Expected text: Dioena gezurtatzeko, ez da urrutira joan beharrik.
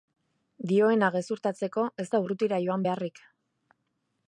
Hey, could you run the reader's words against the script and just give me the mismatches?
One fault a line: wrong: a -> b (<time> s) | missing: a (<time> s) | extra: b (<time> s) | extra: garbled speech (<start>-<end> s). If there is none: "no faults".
no faults